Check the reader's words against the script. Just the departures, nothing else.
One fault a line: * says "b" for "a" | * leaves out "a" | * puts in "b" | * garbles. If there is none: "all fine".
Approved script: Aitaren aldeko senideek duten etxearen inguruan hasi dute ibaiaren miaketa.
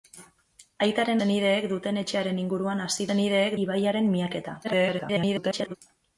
* leaves out "aldeko"
* says "senideek" for "dute"
* garbles